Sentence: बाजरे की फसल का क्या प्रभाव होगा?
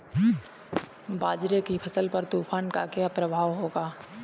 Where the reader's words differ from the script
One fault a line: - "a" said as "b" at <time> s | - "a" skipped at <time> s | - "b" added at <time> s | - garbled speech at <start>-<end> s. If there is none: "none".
- "पर तूफान" added at 2.1 s